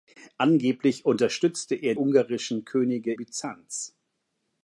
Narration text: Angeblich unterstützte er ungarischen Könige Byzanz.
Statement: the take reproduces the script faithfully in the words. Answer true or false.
true